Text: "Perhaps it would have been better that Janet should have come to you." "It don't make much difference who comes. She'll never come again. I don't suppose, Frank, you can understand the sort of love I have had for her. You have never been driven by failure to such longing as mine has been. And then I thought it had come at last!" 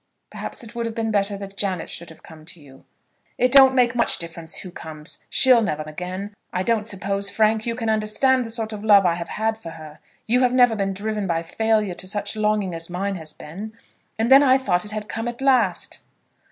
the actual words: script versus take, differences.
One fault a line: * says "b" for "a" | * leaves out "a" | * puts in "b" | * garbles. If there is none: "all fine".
* leaves out "come"